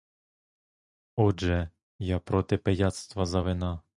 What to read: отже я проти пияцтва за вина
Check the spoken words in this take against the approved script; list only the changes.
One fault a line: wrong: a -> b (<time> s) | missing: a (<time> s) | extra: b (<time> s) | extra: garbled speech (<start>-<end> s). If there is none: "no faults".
no faults